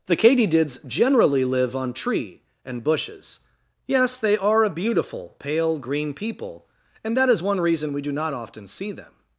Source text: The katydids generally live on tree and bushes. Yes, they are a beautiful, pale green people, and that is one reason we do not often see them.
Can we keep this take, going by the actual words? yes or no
yes